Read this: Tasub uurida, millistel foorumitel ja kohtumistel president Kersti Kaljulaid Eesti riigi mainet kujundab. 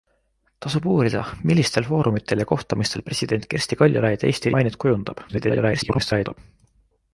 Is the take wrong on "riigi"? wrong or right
wrong